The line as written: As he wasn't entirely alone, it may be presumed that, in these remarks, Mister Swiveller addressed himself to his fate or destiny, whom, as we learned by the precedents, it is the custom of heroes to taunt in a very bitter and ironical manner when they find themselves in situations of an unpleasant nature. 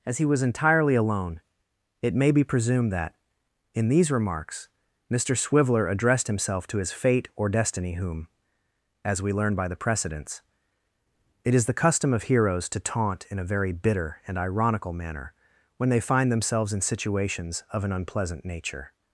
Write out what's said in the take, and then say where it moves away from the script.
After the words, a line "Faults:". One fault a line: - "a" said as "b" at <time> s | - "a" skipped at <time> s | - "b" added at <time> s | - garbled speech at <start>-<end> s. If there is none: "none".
As he was entirely alone, it may be presumed that, in these remarks, Mister Swiveller addressed himself to his fate or destiny, whom, as we learn by the precedents, it is the custom of heroes to taunt in a very bitter and ironical manner when they find themselves in situations of an unpleasant nature.
Faults:
- "wasn't" said as "was" at 0.2 s
- "learned" said as "learn" at 9.3 s